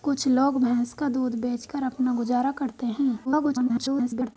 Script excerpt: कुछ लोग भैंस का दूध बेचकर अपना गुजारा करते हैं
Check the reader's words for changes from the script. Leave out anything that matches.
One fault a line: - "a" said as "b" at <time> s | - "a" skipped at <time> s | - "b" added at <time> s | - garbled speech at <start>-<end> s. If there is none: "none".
- garbled speech at 3.2-4.4 s